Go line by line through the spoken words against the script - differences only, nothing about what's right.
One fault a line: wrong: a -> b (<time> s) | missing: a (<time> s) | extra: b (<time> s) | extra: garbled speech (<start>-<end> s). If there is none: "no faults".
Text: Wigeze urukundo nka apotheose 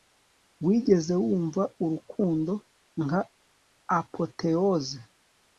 extra: wumva (1.2 s)